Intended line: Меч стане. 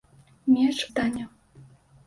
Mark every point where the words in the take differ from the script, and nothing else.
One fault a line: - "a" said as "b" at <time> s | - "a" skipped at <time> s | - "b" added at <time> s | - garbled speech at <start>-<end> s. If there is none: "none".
none